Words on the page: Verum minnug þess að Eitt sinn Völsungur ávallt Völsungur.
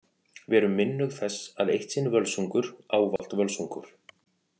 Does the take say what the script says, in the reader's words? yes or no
yes